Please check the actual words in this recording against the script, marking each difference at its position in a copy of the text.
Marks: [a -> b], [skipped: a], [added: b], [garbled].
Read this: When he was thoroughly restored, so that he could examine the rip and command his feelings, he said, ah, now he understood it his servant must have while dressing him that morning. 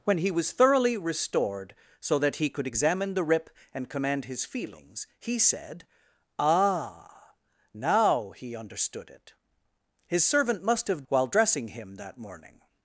When he was thoroughly restored, so that he could examine the rip and command his feelings, he said, ah, now he understood it his servant must have while dressing him that morning.